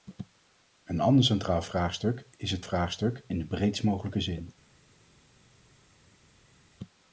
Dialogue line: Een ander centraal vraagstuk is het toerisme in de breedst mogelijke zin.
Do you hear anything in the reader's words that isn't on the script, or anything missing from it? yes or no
yes